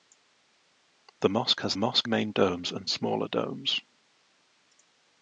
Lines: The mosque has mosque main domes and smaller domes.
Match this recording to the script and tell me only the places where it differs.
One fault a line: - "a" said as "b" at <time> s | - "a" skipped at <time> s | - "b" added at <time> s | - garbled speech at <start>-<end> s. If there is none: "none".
none